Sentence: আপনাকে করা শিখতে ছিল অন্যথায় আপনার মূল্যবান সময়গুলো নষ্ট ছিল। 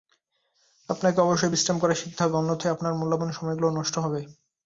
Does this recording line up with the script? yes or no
no